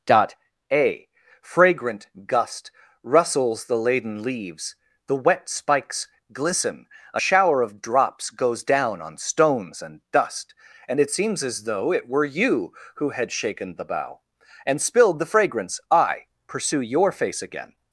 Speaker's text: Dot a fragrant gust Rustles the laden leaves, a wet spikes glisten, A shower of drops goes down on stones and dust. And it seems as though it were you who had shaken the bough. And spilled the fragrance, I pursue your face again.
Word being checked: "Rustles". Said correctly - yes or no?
yes